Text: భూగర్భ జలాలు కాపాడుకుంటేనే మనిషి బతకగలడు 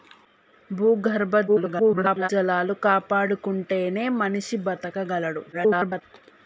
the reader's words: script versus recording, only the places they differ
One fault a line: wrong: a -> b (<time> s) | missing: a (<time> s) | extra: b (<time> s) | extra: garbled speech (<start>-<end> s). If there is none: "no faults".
extra: garbled speech (1.5-2.3 s)
extra: garbled speech (5.5-6.0 s)